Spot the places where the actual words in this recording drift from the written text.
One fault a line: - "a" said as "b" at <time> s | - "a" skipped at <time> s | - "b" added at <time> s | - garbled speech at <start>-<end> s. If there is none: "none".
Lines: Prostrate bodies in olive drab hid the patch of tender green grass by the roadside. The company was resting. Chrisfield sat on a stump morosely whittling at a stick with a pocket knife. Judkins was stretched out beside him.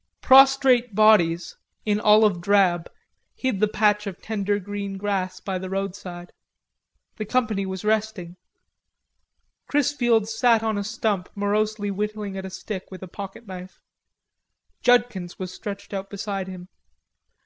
none